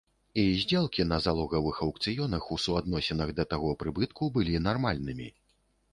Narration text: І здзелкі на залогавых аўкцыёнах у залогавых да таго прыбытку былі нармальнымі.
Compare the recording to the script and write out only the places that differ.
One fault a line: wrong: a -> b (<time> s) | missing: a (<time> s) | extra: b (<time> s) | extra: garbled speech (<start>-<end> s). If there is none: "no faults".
wrong: залогавых -> суадносінах (2.6 s)